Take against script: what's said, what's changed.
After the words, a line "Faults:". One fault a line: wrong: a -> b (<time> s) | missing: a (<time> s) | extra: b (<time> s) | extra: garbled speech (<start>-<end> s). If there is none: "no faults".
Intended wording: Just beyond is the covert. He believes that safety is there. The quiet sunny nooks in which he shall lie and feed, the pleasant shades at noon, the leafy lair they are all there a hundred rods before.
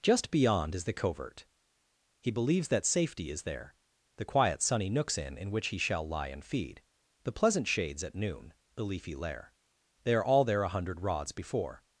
Just beyond is the covert. He believes that safety is there. The quiet sunny nooks in in which he shall lie and feed, the pleasant shades at noon, the leafy lair they are all there a hundred rods before.
Faults:
extra: in (5.4 s)